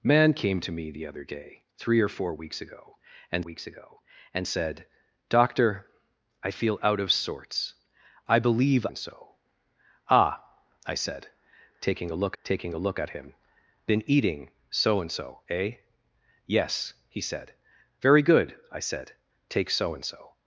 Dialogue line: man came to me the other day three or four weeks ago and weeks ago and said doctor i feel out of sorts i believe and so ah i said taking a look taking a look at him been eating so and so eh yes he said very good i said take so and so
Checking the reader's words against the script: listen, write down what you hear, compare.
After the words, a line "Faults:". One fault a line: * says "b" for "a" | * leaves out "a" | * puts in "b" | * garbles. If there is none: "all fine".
man came to me the other day three or four weeks ago and weeks ago and said doctor i feel out of sorts i believe and so ah i said taking a look taking a look at him been eating so and so eh yes he said very good i said take so and so
Faults:
all fine